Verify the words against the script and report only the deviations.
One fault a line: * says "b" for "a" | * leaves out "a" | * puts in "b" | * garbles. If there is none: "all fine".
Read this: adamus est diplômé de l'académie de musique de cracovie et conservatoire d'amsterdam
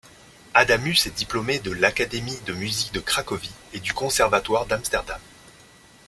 * puts in "du"